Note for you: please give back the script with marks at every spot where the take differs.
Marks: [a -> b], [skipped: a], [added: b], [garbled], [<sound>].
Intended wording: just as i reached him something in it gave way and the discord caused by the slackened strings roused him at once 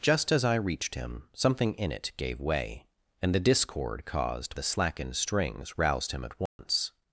just as i reached him something in it gave way and the discord caused [skipped: by] the slackened strings roused him at once [dropout]